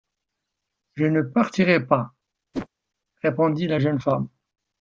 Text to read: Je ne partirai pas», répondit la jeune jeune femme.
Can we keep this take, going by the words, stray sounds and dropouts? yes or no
no